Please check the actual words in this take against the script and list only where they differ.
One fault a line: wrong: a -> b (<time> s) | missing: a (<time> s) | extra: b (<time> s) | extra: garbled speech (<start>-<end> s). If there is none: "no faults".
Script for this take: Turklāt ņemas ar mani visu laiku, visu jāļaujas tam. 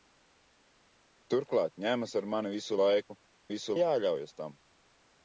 no faults